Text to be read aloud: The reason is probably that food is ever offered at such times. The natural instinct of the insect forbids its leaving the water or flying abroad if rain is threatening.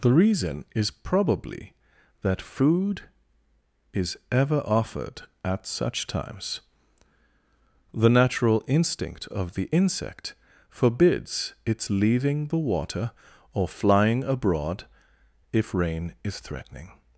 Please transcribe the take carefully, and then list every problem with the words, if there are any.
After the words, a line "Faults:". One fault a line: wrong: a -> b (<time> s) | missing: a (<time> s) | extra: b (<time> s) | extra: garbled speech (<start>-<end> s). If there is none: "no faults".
The reason is probably that food is ever offered at such times. The natural instinct of the insect forbids its leaving the water or flying abroad if rain is threatening.
Faults:
no faults